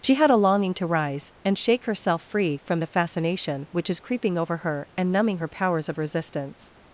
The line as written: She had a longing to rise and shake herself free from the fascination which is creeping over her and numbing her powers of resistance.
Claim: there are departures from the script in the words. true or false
false